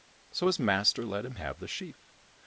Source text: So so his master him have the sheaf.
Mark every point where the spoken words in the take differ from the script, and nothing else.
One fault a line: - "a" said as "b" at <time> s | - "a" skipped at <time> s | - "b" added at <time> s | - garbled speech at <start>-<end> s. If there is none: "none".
- "so" skipped at 0.5 s
- "let" added at 1.0 s